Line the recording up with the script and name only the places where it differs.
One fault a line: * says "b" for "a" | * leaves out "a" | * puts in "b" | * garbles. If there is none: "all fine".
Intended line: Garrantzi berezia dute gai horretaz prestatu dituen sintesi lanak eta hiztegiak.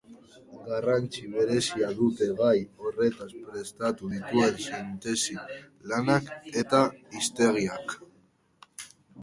all fine